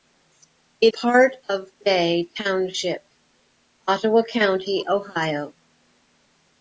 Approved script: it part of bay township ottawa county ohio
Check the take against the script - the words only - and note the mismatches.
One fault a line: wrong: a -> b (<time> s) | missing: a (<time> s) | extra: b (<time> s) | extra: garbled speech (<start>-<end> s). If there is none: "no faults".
no faults